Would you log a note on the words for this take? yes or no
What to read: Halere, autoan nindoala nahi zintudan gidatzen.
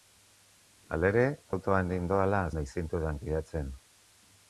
no